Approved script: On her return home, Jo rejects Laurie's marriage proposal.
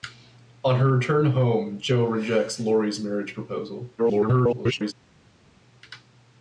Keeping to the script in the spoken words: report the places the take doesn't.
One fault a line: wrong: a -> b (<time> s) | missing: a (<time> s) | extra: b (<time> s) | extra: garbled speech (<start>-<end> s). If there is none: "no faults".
extra: garbled speech (4.0-4.9 s)